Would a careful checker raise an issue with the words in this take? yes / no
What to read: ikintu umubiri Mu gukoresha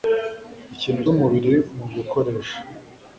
no